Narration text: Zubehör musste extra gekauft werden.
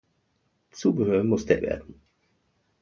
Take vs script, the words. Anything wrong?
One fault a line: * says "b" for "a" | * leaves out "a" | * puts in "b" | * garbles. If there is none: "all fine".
* leaves out "extra gekauft"